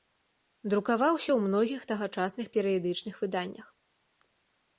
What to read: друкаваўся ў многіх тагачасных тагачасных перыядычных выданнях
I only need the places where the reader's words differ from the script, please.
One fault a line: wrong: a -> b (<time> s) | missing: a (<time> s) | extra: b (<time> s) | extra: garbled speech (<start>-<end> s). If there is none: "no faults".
missing: тагачасных (2.5 s)